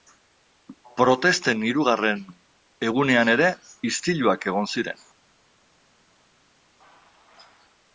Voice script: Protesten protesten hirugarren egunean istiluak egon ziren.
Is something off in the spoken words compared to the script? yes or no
yes